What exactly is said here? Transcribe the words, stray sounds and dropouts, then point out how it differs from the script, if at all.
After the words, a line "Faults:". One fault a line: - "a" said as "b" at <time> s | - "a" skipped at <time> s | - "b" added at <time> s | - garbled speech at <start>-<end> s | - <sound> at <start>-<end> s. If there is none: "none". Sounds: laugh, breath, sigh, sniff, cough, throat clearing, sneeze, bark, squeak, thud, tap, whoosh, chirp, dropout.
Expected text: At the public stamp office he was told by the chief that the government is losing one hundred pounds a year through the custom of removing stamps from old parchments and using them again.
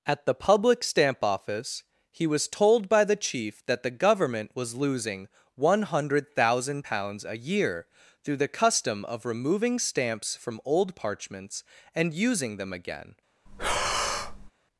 At the public stamp office he was told by the chief that the government was losing one hundred thousand pounds a year through the custom of removing stamps from old parchments and using them again.
Faults:
- "is" said as "was" at 4.5 s
- "thousand" added at 6.3 s
- breath at 13.5-14.5 s